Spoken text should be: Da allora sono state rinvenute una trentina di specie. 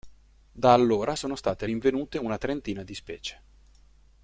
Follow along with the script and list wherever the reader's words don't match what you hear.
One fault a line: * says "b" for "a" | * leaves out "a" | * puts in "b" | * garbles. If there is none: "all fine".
all fine